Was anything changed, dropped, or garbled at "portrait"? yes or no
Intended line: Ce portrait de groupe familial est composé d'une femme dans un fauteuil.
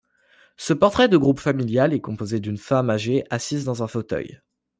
no